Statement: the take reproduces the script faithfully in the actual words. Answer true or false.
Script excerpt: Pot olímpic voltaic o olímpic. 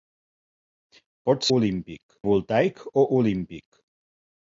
true